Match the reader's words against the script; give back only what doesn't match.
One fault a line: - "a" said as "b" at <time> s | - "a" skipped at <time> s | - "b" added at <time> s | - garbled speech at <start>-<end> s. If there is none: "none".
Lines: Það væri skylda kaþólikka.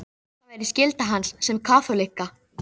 - "hans sem" added at 1.1 s